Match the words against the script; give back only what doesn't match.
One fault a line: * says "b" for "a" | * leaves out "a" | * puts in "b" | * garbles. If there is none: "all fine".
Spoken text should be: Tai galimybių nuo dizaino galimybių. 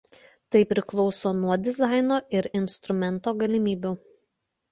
* says "priklauso" for "galimybių"
* puts in "ir instrumento"